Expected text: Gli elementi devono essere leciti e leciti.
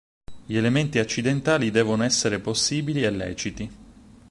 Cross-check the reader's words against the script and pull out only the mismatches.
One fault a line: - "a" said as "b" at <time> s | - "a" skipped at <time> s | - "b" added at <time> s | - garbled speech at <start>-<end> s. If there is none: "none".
- "accidentali" added at 1.0 s
- "leciti" said as "possibili" at 2.4 s